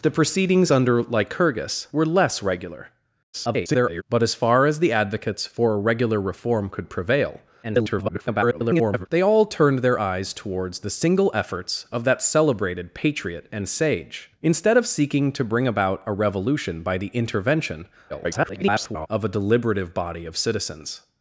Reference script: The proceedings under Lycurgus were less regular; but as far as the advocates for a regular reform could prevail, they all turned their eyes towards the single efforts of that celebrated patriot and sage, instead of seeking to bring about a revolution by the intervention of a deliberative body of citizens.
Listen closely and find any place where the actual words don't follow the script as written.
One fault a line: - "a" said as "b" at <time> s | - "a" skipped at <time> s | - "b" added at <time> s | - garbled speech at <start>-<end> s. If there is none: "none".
- garbled speech at 3.3-4.0 s
- garbled speech at 7.6-9.1 s
- garbled speech at 18.1-19.1 s